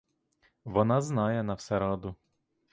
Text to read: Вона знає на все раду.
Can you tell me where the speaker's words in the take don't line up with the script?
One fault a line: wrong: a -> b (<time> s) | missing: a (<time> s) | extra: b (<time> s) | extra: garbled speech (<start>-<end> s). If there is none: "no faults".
no faults